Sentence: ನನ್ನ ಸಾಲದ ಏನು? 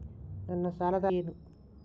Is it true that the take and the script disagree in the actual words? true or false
false